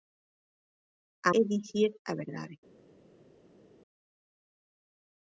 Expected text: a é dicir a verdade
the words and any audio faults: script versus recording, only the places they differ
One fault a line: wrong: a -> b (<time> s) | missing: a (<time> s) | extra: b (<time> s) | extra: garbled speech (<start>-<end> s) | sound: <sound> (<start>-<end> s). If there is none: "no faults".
no faults